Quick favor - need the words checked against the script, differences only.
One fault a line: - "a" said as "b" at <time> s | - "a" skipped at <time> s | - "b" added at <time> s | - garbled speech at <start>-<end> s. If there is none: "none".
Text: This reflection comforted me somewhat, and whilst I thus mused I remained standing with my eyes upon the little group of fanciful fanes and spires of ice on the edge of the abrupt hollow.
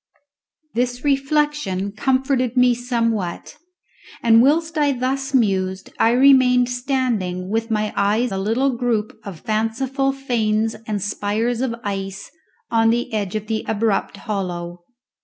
- "upon" skipped at 8.3 s